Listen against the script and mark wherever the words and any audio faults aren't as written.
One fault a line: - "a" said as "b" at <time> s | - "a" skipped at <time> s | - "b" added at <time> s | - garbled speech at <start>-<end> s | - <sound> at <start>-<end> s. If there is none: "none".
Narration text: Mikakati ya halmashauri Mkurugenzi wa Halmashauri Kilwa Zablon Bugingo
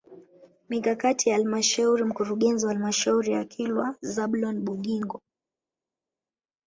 - "ya" added at 3.3 s